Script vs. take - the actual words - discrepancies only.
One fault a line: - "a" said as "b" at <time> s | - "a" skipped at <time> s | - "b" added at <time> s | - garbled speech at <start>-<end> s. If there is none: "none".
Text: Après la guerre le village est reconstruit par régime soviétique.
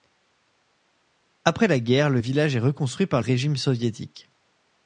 none